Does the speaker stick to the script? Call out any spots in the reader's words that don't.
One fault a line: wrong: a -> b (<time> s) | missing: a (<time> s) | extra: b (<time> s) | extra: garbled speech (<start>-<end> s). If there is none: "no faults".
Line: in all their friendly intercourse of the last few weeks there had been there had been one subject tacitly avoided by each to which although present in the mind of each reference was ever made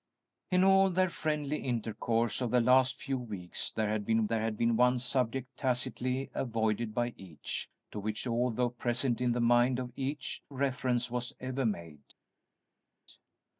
no faults